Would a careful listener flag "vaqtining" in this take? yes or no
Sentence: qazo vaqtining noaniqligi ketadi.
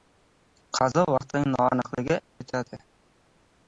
no